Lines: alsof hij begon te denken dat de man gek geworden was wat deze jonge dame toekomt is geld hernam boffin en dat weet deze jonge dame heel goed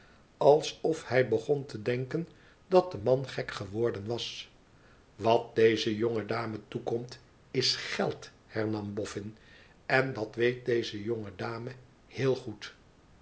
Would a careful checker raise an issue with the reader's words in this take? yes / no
no